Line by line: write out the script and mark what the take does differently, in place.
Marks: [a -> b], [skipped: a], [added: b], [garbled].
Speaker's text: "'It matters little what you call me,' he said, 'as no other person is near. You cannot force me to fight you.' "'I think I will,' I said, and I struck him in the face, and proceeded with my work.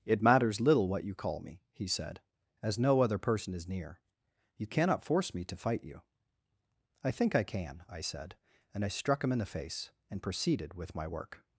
"'It matters little what you call me,' he said, 'as no other person is near. You cannot force me to fight you.' "'I think I [will,' -> can] I said, and I struck him in the face, and proceeded with my work.